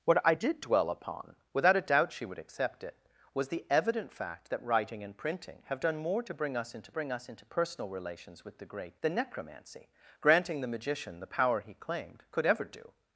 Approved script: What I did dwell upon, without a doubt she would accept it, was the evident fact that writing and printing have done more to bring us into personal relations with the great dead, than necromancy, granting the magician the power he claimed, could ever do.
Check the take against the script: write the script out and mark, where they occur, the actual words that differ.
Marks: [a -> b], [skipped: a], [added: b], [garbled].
What I did dwell upon, without a doubt she would accept it, was the evident fact that writing and printing have done more to bring us into [added: bring us into] personal relations with the great [skipped: dead,] than necromancy, granting the magician the power he claimed, could ever do.